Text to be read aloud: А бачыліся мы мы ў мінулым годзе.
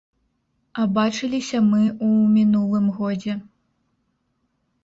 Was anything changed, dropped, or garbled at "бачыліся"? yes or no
no